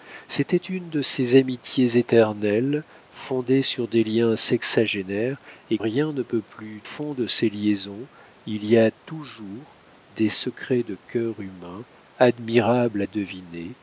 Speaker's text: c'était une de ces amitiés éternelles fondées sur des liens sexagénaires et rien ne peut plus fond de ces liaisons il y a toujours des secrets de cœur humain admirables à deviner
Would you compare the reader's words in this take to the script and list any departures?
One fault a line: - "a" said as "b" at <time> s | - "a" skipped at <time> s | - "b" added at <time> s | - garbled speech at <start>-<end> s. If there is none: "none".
none